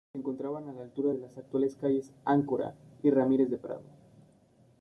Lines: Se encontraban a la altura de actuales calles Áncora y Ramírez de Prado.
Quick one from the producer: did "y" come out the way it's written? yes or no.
yes